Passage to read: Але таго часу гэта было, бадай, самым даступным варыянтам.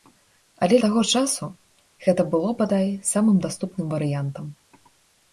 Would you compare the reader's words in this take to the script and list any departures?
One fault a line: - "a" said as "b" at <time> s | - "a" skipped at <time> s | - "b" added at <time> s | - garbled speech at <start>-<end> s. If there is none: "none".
none